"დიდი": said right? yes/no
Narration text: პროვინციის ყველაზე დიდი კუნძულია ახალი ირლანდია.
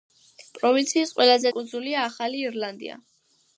no